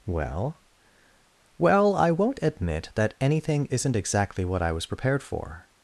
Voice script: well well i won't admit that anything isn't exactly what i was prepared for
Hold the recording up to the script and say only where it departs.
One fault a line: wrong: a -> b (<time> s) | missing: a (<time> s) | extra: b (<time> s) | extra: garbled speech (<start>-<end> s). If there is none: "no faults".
no faults